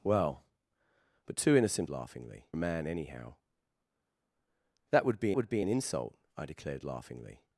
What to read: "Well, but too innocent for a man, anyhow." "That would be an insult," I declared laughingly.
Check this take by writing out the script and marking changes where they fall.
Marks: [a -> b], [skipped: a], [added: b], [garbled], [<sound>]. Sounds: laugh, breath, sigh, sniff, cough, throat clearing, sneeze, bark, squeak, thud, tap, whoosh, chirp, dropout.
"Well, but too innocent [for -> laughingly] a man, anyhow." "That would be [added: would be] an insult," I declared laughingly.